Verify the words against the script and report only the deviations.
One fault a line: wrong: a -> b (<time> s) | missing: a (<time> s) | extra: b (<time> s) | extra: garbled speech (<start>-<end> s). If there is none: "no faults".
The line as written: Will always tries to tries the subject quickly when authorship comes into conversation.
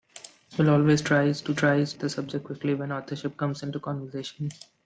no faults